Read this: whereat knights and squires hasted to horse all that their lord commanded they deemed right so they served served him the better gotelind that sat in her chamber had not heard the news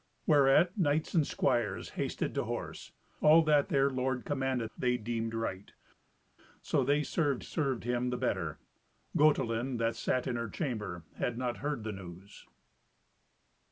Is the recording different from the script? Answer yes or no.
no